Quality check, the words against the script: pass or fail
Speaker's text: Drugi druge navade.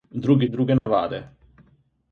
pass